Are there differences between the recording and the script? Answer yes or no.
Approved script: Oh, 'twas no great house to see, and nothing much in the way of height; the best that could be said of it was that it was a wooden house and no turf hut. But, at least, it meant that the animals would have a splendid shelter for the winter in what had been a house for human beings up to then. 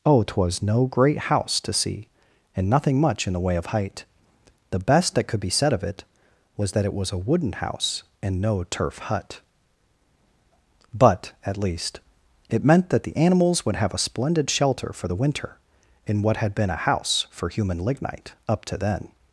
yes